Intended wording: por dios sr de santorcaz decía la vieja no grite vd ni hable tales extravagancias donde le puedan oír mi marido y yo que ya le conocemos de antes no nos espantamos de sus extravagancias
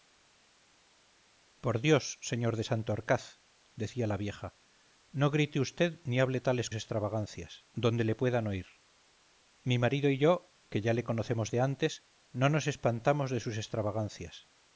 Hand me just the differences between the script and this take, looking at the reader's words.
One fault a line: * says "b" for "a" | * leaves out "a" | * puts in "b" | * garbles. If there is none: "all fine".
all fine